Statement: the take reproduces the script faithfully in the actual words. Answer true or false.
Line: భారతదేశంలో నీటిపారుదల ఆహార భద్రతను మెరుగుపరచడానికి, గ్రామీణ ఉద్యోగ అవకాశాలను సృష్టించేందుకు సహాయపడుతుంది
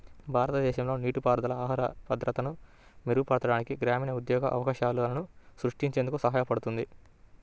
true